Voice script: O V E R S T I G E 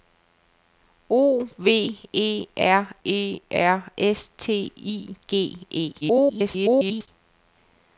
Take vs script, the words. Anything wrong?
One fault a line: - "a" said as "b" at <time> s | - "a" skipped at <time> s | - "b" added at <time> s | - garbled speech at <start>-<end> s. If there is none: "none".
- "E R" added at 3.0 s
- garbled speech at 6.0-7.1 s